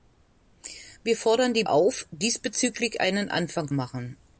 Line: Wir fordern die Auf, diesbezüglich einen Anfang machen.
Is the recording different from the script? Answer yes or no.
no